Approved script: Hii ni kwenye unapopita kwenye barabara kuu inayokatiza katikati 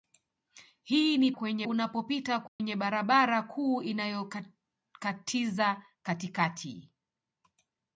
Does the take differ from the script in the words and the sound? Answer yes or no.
yes